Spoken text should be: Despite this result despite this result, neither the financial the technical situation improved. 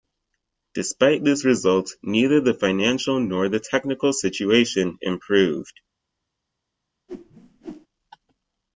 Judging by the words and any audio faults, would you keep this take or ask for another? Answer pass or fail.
fail